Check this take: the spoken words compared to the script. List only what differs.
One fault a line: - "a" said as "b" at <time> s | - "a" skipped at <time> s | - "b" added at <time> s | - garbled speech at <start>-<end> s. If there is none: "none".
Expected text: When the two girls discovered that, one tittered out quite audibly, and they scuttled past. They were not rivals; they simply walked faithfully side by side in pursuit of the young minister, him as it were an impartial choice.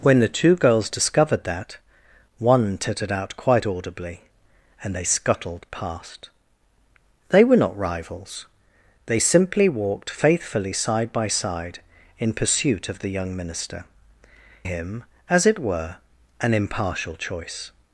none